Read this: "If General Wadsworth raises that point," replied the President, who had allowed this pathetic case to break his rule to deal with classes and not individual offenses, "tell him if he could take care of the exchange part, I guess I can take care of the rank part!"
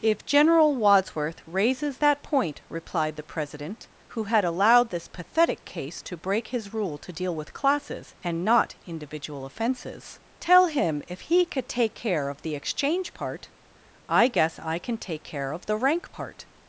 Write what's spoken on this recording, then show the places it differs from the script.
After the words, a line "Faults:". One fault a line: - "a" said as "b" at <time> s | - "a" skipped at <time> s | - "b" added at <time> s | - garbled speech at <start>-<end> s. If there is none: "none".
"If General Wadsworth raises that point," replied the President, who had allowed this pathetic case to break his rule to deal with classes and not individual offenses, "tell him if he could take care of the exchange part, I guess I can take care of the rank part!"
Faults:
none